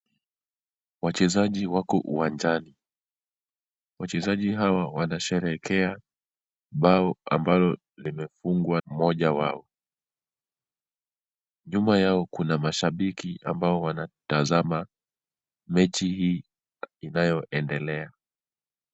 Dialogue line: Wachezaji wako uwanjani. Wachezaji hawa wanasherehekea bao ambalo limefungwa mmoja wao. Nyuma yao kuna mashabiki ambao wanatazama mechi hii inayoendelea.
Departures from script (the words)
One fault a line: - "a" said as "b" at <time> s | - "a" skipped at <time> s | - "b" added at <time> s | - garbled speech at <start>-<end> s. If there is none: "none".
none